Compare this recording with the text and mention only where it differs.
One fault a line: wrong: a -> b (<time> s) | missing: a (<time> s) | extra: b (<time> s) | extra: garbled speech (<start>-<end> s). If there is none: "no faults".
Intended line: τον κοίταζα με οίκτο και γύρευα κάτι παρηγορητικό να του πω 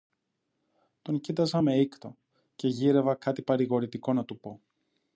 no faults